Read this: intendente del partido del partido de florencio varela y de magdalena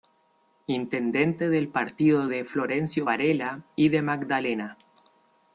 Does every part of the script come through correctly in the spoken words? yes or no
no